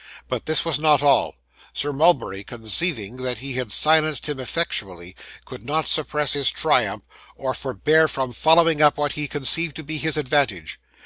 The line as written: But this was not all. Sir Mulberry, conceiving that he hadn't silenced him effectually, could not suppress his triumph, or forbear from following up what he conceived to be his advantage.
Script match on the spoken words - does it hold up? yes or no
no